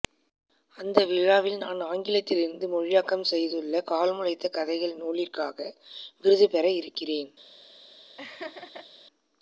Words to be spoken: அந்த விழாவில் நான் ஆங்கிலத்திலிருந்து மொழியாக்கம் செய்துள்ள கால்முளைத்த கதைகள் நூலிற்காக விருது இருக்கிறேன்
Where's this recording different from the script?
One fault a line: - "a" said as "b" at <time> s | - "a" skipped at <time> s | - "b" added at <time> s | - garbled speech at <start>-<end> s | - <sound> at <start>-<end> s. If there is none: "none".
- "பெற" added at 6.5 s
- laugh at 8.2-8.9 s